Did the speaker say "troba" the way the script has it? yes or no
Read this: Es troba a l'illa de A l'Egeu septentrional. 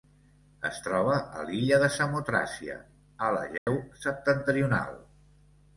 yes